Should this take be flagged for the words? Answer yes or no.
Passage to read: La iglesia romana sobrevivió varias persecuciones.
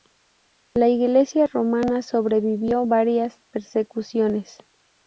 no